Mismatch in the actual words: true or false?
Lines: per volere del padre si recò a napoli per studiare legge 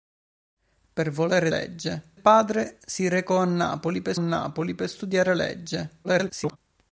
true